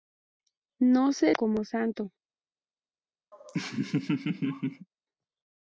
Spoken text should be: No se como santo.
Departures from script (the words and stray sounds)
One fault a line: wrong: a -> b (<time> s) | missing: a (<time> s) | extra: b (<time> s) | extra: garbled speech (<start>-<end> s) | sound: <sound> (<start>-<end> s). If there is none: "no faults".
sound: laugh (3.3-4.9 s)